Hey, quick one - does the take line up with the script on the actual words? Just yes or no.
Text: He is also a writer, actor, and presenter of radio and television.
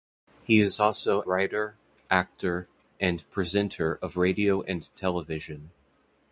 no